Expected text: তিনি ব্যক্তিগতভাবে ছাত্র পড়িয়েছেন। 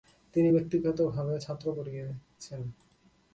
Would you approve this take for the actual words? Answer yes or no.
yes